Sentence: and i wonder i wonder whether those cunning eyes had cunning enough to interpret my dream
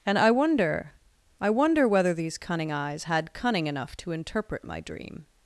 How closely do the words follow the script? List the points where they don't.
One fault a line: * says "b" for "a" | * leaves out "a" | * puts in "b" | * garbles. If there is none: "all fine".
* says "these" for "those"